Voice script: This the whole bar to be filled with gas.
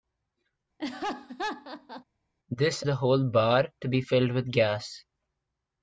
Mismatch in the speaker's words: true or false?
false